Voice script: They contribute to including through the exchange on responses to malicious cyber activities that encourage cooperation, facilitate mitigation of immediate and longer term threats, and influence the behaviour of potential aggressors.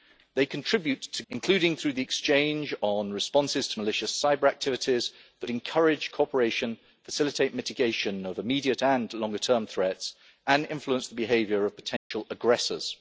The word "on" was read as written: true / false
true